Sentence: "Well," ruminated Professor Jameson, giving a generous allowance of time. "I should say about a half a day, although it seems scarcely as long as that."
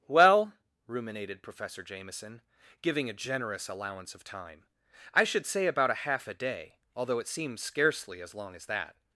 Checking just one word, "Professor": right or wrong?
right